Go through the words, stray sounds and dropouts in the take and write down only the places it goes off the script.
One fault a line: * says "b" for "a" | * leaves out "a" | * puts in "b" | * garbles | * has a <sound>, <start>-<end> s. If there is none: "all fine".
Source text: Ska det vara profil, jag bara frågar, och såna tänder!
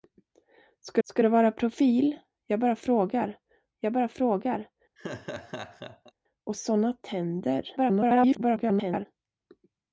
* puts in "ska"
* puts in "jag bara frågar"
* has a laugh, 5.0-6.1 s
* garbles